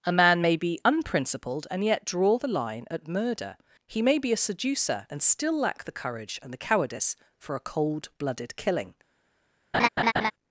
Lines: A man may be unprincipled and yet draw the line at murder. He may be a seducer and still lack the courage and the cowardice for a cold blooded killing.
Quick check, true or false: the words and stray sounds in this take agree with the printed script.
false